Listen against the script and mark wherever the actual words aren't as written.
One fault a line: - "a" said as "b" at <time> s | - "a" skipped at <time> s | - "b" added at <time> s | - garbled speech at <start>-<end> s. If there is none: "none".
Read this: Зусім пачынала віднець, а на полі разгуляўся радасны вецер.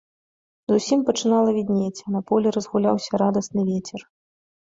none